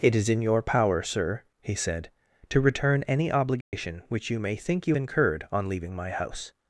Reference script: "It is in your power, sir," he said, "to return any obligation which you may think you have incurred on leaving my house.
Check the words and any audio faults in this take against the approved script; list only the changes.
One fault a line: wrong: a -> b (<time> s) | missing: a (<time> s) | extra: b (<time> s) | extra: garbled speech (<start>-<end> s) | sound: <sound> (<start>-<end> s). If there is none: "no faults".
sound: dropout (3.6-3.7 s)
missing: have (5.0 s)